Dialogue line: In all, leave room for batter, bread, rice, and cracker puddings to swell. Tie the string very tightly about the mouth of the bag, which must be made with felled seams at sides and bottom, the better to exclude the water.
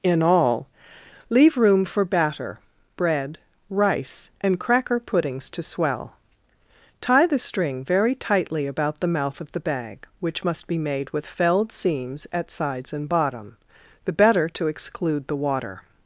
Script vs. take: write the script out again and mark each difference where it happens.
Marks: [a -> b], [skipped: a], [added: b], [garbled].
In all, leave room for batter, bread, rice, and cracker puddings to swell. Tie the string very tightly about the mouth of the bag, which must be made with felled seams at sides and bottom, the better to exclude the water.